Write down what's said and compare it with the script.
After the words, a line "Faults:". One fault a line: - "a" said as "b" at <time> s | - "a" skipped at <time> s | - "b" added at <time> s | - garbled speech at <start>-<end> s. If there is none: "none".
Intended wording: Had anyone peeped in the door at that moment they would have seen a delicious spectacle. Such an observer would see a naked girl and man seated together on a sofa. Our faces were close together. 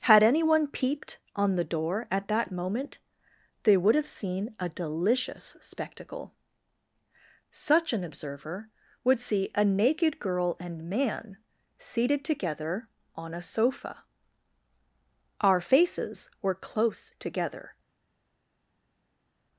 Had anyone peeped on the door at that moment they would have seen a delicious spectacle. Such an observer would see a naked girl and man seated together on a sofa. Our faces were close together.
Faults:
- "in" said as "on" at 1.4 s